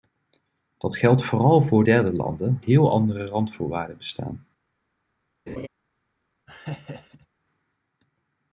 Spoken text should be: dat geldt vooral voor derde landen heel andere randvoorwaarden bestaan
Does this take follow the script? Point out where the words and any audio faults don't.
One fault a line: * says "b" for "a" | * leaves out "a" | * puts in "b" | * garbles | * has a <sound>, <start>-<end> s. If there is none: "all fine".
* has a laugh, 5.5-5.7 s
* has a laugh, 6.5-7.3 s